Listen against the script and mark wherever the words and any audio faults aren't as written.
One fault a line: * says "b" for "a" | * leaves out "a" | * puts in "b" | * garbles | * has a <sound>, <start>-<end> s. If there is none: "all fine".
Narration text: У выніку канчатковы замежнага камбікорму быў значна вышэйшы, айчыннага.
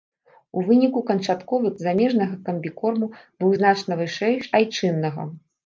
all fine